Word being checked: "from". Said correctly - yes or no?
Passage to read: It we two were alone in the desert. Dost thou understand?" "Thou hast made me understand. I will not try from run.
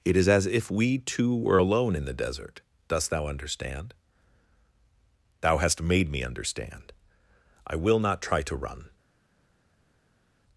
no